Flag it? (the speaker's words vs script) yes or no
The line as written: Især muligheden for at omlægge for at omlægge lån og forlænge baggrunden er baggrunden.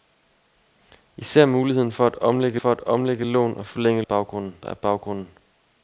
no